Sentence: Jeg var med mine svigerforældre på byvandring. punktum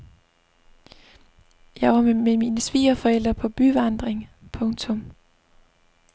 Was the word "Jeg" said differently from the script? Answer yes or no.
no